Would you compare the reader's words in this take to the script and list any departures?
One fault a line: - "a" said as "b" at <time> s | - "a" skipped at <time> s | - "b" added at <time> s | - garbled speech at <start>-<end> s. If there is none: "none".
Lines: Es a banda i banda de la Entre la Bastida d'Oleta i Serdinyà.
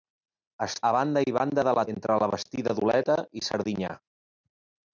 none